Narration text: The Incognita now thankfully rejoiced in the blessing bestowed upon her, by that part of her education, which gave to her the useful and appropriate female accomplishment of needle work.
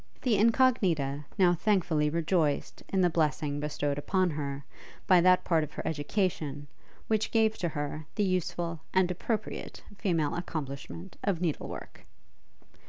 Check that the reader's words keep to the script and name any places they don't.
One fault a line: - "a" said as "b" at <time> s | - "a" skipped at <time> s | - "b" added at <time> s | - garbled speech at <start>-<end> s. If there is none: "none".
none